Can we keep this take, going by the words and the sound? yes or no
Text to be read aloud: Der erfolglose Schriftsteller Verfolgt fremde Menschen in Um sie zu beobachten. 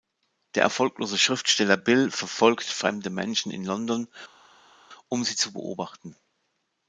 no